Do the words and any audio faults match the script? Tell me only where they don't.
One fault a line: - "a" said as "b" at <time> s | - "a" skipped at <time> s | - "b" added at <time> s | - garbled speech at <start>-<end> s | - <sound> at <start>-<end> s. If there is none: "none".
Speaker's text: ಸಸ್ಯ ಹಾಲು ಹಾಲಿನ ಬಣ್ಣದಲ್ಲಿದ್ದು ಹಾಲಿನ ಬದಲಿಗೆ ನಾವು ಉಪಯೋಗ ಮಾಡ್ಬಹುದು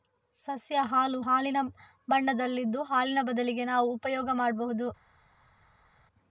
none